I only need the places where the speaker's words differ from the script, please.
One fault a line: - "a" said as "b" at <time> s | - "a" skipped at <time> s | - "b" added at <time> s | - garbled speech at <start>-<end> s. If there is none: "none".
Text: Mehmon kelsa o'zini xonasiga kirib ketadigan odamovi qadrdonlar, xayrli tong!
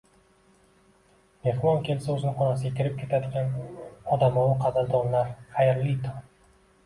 none